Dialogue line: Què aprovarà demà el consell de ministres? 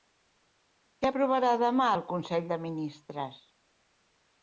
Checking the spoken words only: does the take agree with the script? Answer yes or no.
yes